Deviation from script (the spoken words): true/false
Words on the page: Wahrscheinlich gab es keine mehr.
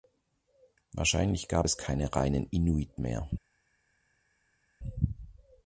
true